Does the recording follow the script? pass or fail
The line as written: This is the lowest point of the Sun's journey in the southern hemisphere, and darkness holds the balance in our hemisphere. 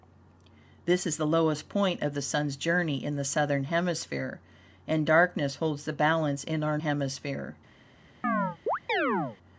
pass